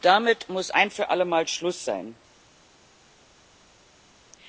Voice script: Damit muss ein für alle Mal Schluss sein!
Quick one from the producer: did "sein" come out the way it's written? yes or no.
yes